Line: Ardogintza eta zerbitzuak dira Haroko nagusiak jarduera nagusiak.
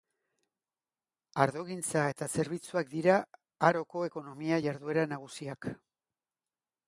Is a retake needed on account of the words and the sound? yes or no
yes